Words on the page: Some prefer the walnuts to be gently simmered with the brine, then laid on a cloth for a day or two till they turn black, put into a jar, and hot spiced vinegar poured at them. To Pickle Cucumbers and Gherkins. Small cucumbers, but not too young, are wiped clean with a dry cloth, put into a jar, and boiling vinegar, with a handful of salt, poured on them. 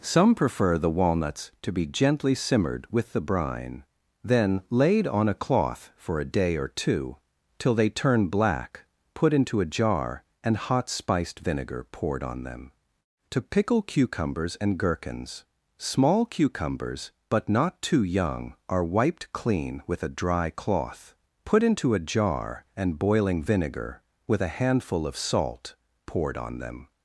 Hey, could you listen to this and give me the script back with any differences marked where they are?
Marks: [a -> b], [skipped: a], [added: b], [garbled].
Some prefer the walnuts to be gently simmered with the brine, then laid on a cloth for a day or two till they turn black, put into a jar, and hot spiced vinegar poured [at -> on] them. To Pickle Cucumbers and Gherkins. Small cucumbers, but not too young, are wiped clean with a dry cloth, put into a jar, and boiling vinegar, with a handful of salt, poured on them.